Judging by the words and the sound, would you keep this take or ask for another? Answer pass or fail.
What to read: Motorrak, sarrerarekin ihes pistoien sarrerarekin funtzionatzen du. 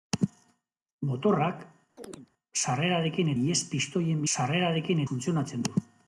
fail